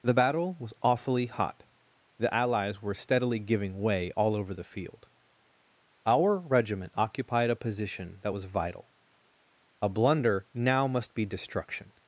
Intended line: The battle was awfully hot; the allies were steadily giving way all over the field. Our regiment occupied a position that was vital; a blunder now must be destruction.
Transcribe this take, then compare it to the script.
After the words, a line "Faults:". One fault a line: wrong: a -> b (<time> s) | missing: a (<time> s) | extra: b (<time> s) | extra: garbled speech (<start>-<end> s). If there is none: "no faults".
The battle was awfully hot; the allies were steadily giving way all over the field. Our regiment occupied a position that was vital; a blunder now must be destruction.
Faults:
no faults